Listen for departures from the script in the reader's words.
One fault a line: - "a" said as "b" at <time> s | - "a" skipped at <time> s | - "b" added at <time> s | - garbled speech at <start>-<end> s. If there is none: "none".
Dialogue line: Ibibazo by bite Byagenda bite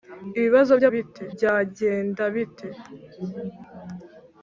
none